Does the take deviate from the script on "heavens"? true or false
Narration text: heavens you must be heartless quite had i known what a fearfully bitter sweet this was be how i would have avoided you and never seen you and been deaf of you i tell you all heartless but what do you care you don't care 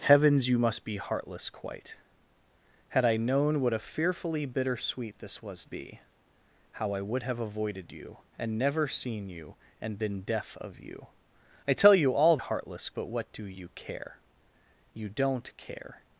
false